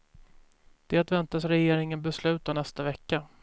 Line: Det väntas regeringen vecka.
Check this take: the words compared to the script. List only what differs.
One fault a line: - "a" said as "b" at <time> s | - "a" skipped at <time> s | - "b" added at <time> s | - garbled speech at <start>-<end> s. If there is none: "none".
- "besluta nästa" added at 2.0 s